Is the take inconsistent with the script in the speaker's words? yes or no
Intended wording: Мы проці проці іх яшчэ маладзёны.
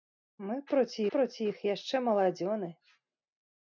no